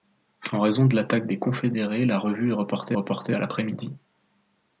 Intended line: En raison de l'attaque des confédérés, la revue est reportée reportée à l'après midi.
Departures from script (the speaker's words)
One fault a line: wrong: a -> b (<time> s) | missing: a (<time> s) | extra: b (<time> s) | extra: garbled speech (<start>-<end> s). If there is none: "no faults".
no faults